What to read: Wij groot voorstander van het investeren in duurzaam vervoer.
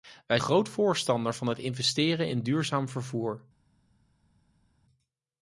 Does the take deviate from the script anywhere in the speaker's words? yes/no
no